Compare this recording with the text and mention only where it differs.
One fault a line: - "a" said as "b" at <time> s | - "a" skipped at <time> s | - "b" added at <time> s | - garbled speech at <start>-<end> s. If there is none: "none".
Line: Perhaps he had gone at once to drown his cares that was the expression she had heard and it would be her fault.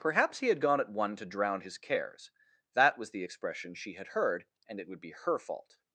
- "once" said as "one" at 0.9 s